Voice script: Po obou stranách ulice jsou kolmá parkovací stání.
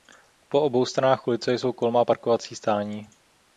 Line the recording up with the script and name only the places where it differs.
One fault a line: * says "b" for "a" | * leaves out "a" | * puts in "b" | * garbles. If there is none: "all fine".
all fine